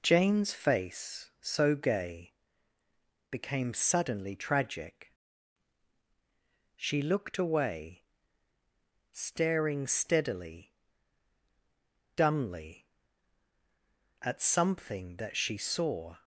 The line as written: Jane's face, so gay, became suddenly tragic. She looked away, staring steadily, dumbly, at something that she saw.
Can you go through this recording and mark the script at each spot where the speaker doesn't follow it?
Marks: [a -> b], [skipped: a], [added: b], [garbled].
Jane's face, so gay, became suddenly tragic. She looked away, staring steadily, dumbly, at something that she saw.